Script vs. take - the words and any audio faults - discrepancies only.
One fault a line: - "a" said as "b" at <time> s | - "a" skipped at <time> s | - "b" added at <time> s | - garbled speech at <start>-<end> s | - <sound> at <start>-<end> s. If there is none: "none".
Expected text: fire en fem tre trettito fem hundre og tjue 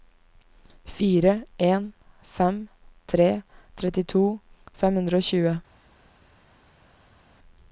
none